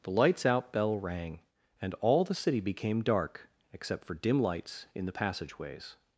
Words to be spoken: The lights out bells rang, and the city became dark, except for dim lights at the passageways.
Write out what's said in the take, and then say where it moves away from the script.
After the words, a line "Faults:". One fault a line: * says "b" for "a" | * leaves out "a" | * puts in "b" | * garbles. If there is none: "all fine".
The lights out bell rang, and all the city became dark, except for dim lights in the passageways.
Faults:
* says "bell" for "bells"
* puts in "all"
* says "in" for "at"